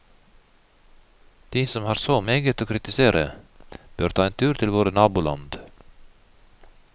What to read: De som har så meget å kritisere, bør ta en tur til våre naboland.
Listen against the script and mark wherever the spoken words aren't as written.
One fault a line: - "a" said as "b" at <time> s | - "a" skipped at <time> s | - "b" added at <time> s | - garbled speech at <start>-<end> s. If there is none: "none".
none